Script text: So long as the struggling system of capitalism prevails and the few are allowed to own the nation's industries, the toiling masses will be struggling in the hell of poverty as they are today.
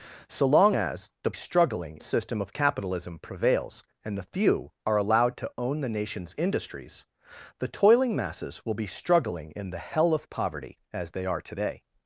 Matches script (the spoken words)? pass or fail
pass